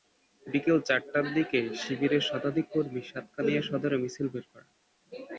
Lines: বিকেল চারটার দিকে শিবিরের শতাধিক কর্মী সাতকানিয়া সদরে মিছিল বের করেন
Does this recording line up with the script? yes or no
yes